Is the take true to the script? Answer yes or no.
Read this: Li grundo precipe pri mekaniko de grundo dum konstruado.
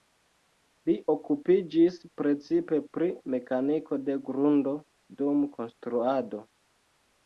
no